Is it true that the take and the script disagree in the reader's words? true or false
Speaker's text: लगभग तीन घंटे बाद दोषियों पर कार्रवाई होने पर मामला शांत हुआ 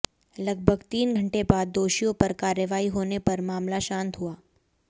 false